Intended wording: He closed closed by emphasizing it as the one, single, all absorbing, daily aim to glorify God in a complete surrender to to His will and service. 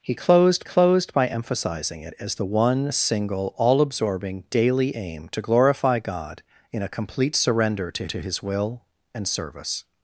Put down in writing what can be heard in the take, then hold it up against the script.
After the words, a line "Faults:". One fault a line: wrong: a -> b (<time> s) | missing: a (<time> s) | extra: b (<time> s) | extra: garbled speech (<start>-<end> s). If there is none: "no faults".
He closed closed by emphasizing it as the one, single, all absorbing, daily aim to glorify God in a complete surrender to to His will and service.
Faults:
no faults